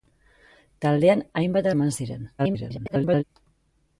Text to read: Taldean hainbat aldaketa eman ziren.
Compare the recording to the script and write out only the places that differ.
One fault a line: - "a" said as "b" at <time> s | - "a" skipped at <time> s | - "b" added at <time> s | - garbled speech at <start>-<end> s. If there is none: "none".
- "aldaketa" skipped at 1.7 s
- garbled speech at 2.4-3.2 s